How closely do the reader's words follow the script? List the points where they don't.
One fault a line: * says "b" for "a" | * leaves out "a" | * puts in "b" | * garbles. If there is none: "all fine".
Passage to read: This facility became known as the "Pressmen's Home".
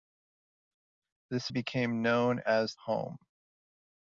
* leaves out "facility"
* leaves out "the Pressmen's"